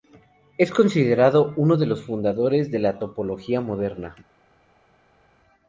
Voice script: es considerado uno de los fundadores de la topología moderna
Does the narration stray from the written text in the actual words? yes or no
no